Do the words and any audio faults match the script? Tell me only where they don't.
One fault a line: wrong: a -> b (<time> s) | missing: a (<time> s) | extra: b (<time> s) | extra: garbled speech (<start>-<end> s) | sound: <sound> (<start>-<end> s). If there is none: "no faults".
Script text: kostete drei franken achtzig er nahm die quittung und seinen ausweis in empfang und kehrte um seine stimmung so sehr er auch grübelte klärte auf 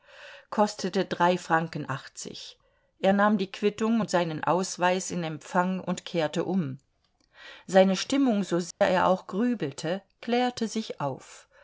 sound: dropout (8.7-8.8 s)
extra: sich (10.7 s)